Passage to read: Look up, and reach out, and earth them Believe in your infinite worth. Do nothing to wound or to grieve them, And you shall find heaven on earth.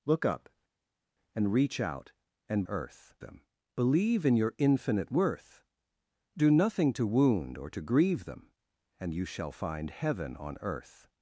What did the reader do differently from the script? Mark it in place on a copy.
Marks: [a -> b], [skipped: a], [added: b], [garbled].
Look up, and reach out, and earth them Believe in your infinite worth. Do nothing to wound or to grieve them, And you shall find heaven on earth.